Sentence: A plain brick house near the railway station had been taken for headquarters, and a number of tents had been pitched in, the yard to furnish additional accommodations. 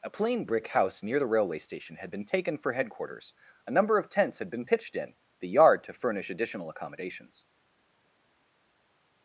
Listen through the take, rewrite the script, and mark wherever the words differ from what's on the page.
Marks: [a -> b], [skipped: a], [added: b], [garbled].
A plain brick house near the railway station had been taken for headquarters, [skipped: and] a number of tents had been pitched in, the yard to furnish additional accommodations.